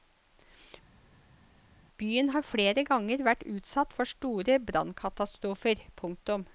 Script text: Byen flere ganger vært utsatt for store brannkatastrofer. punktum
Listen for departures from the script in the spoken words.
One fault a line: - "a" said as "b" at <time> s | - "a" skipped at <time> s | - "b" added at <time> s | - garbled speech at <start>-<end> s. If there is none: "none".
- "har" added at 2.3 s